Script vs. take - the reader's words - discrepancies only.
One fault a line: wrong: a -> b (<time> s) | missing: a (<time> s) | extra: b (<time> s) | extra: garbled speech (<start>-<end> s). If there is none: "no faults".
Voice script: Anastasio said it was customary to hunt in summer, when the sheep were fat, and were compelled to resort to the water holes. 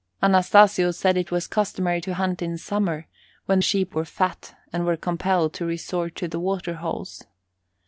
missing: the (3.6 s)